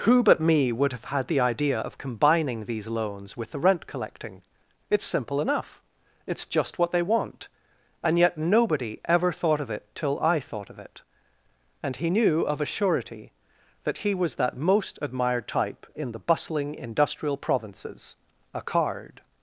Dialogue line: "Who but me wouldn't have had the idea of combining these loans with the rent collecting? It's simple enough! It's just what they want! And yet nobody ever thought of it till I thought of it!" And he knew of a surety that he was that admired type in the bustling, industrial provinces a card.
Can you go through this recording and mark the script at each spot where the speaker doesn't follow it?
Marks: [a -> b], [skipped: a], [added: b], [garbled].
"Who but me [wouldn't -> would] have had the idea of combining these loans with the rent collecting? It's simple enough! It's just what they want! And yet nobody ever thought of it till I thought of it!" And he knew of a surety that he was that [added: most] admired type in the bustling, industrial provinces a card.